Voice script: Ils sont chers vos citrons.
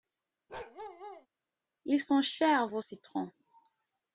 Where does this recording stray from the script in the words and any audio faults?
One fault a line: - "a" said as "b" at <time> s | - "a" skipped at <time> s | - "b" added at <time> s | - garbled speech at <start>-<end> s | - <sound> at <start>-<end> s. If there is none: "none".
- bark at 0.5-1.3 s